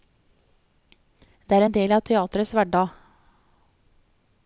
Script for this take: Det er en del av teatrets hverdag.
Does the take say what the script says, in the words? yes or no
yes